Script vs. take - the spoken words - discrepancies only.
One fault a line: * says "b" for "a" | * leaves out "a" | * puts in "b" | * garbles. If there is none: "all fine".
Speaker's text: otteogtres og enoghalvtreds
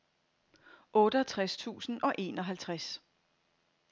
* puts in "tusind"